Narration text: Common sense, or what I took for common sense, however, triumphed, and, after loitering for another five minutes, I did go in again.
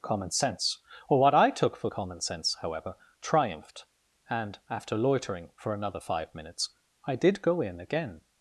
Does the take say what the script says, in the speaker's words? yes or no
yes